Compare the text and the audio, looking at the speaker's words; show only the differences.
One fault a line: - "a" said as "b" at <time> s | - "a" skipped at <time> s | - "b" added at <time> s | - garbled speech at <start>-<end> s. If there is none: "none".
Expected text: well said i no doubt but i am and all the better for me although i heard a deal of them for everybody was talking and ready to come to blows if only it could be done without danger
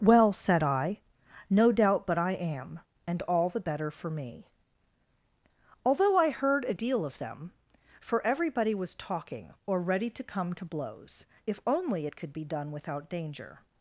- "and" said as "or" at 9.7 s